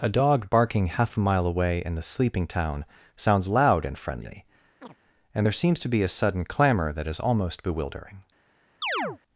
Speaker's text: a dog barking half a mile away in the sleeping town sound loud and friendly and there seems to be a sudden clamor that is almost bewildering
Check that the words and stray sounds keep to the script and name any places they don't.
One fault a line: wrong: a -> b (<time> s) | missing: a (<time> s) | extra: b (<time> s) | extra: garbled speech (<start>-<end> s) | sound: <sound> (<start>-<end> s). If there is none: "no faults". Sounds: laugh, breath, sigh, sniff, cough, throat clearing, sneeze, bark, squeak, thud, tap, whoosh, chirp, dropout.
wrong: sound -> sounds (3.1 s)
sound: chirp (4.8-5.0 s)
sound: chirp (8.8-9.2 s)